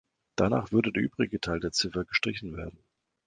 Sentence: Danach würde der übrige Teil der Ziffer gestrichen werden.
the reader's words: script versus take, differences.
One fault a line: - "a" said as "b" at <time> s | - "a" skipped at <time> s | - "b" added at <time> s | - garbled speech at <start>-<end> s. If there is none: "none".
none